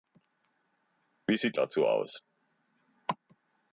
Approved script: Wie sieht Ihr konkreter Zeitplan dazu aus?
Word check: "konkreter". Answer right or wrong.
wrong